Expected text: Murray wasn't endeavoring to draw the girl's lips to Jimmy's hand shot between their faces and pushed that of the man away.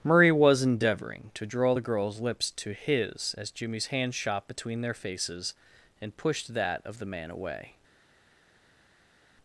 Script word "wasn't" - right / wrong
wrong